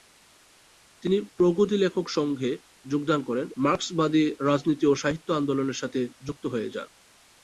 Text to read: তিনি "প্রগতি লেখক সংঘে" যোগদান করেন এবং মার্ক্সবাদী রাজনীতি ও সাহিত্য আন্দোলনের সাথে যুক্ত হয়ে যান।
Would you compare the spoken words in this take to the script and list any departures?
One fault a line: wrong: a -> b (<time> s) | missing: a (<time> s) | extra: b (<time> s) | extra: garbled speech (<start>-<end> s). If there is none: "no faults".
missing: এবং (3.5 s)